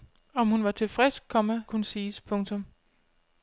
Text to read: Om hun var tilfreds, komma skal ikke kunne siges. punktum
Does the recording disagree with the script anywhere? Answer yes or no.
yes